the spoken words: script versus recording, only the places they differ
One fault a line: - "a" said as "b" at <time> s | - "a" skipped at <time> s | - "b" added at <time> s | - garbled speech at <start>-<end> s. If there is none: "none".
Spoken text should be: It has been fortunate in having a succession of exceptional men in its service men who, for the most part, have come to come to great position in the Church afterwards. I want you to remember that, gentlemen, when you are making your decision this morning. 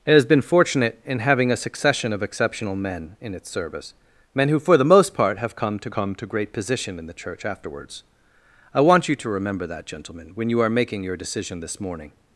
none